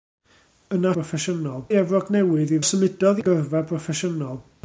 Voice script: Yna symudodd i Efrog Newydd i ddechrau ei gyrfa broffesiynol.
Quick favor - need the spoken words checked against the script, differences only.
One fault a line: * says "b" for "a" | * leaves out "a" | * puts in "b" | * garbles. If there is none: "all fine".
* says "broffesiynol" for "symudodd"
* says "symudodd" for "ddechrau"